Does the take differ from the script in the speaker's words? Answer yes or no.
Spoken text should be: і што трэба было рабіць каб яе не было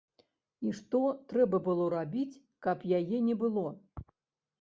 no